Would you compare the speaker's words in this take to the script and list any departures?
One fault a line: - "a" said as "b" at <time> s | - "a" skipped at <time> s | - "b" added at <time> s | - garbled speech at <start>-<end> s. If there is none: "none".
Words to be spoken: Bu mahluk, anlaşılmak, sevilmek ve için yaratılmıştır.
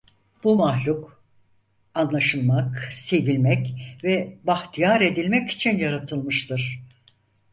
- "bahtiyar edilmek" added at 4.4 s